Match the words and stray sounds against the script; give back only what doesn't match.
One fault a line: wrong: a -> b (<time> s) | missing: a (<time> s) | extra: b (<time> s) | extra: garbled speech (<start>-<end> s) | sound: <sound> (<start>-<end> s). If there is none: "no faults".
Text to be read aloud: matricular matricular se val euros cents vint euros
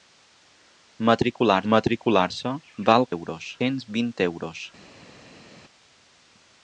no faults